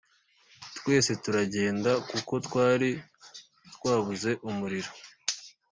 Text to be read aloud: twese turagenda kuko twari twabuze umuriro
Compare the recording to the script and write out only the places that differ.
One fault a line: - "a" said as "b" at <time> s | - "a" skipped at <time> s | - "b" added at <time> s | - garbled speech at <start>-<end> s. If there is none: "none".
none